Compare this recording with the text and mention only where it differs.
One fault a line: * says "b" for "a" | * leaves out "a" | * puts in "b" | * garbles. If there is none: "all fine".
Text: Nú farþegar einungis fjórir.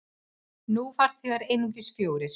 all fine